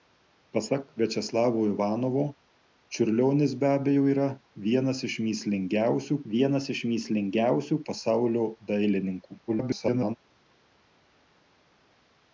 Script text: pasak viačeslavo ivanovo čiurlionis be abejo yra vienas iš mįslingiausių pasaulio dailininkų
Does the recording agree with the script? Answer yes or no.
no